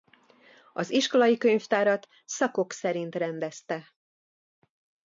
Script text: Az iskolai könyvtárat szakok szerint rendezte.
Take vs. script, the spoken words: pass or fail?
pass